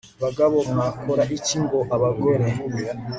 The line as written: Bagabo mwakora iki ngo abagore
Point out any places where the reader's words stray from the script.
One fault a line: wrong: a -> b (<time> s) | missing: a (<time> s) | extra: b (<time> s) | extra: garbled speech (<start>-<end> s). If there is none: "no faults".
no faults